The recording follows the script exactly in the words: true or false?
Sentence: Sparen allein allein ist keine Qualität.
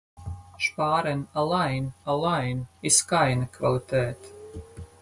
true